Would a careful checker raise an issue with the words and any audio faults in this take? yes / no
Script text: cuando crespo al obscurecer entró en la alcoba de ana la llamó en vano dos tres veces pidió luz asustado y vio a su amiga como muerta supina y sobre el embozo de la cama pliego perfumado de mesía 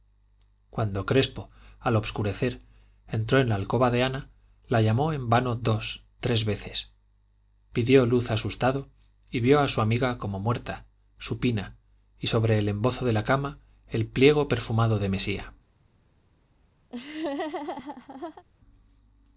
yes